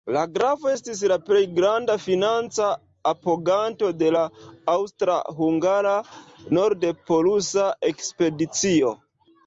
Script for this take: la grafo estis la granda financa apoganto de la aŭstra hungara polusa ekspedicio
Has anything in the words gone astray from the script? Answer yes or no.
yes